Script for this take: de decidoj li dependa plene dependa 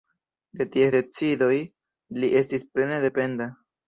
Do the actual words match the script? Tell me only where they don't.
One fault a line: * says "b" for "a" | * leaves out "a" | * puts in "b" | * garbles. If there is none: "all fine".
* puts in "ties"
* says "estis" for "dependa"